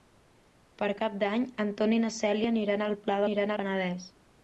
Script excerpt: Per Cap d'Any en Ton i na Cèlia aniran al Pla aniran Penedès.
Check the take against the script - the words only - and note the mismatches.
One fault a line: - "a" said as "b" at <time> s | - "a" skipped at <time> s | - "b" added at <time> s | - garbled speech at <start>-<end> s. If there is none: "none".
none